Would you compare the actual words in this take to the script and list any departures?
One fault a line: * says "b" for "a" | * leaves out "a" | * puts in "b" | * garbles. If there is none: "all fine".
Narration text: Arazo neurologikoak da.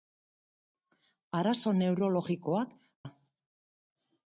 all fine